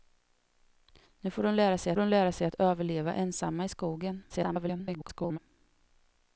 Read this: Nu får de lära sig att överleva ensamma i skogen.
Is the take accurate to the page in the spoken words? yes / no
no